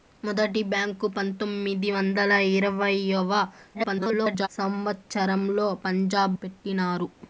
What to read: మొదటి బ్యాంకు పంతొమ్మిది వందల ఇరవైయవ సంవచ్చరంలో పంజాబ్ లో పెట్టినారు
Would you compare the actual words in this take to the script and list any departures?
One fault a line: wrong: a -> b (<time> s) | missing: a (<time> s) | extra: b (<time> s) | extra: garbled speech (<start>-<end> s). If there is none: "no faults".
extra: garbled speech (3.7-4.5 s)
missing: లో (6.4 s)